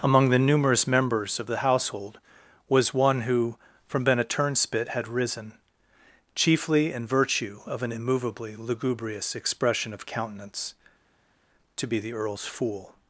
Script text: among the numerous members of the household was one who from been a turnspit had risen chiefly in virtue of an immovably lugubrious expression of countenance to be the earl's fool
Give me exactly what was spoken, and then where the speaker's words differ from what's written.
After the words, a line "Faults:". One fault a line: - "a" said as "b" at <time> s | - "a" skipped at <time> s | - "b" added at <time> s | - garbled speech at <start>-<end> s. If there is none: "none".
among the numerous members of the household was one who from been a turnspit had risen chiefly in virtue of an immovably lugubrious expression of countenance to be the earl's fool
Faults:
none